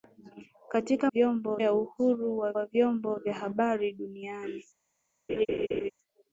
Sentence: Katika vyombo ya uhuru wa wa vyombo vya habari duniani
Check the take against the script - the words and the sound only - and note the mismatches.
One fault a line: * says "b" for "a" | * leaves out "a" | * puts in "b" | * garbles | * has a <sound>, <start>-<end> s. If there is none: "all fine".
* has a laugh, 5.3-5.9 s